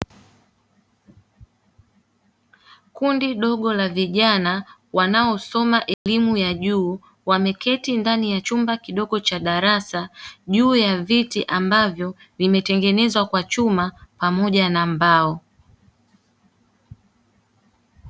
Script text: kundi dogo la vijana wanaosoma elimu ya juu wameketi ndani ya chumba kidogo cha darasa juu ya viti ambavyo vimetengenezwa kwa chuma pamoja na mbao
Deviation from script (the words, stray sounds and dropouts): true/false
true